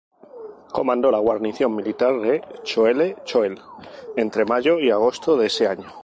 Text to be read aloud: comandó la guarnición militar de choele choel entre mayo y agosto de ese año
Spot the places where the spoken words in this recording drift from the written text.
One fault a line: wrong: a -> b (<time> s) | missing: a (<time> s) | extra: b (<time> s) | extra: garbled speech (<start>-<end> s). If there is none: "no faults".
no faults